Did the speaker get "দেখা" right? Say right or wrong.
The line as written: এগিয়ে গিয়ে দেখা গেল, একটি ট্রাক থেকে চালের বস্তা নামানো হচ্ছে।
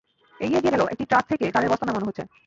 wrong